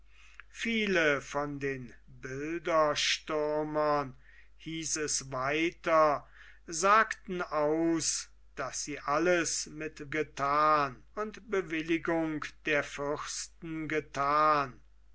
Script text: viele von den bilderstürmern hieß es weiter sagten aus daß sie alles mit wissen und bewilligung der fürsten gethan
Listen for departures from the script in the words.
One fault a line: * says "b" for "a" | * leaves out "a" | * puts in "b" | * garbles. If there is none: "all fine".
* says "gethan" for "wissen"